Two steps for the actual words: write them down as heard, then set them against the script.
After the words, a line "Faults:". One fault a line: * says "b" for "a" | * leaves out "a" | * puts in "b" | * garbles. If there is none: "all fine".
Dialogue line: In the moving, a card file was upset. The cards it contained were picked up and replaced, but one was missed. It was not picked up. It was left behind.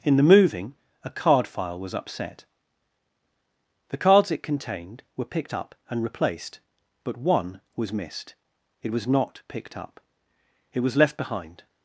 In the moving, a card file was upset. The cards it contained were picked up and replaced, but one was missed. It was not picked up. It was left behind.
Faults:
all fine